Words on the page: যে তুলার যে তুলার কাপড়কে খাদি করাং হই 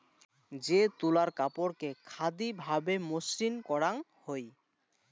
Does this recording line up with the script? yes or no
no